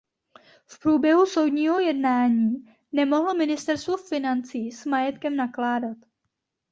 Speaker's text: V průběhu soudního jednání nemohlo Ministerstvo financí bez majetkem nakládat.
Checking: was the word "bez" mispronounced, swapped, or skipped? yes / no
yes